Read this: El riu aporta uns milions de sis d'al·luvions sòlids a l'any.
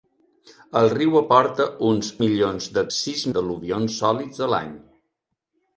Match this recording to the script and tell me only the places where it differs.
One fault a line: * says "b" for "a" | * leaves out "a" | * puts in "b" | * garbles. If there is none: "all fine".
all fine